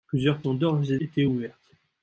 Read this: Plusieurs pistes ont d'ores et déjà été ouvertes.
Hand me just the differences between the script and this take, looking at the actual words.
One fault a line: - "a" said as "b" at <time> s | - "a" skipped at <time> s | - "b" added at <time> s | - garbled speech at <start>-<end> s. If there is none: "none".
- "pistes" skipped at 0.4 s
- "déjà" skipped at 1.0 s